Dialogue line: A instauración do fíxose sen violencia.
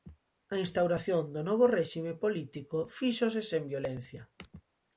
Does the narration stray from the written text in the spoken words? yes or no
yes